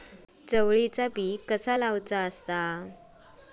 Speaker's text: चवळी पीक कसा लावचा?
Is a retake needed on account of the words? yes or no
no